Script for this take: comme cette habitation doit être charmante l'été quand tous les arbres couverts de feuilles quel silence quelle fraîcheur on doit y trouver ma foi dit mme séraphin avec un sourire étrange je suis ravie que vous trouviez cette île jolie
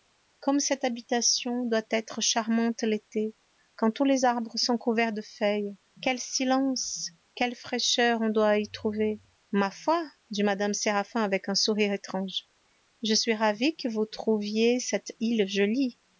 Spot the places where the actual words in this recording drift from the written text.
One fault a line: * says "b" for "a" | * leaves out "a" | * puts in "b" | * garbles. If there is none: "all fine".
* puts in "sont"